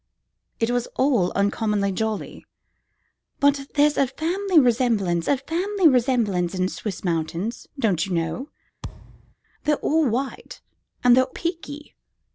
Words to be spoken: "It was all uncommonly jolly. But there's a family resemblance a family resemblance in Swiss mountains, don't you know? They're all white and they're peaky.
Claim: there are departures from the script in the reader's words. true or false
false